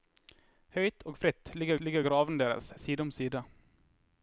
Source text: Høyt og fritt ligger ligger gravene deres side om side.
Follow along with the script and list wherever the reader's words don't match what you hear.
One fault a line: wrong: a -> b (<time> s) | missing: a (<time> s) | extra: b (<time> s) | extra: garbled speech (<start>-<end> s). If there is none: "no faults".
no faults